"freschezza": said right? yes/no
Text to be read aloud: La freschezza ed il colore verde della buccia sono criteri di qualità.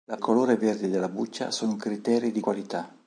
no